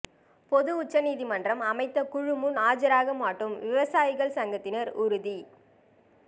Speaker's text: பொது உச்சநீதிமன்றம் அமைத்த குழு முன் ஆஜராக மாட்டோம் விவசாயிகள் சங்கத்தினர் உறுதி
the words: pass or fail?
pass